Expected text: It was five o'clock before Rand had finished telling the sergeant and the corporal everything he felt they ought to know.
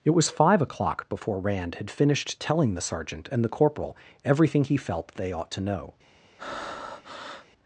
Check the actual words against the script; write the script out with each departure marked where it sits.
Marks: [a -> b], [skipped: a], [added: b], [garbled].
It was five o'clock before Rand had finished telling the sergeant and the corporal everything he felt they ought to know.